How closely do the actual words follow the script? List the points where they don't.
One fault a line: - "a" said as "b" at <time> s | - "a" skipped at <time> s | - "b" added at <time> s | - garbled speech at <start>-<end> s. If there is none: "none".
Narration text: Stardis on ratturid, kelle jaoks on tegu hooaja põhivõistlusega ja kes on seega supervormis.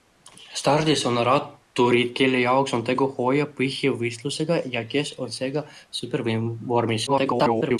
- garbled speech at 7.1-7.8 s